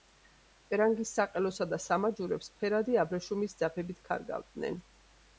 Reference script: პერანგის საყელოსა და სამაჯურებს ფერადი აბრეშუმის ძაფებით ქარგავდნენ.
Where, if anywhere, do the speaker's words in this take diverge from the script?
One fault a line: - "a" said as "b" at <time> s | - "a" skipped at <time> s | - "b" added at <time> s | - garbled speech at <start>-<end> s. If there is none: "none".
none